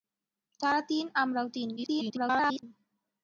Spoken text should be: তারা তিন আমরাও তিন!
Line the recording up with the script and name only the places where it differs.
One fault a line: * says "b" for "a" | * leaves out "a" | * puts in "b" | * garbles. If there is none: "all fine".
* garbles